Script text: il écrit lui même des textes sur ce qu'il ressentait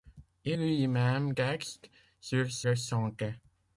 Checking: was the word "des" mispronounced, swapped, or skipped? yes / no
yes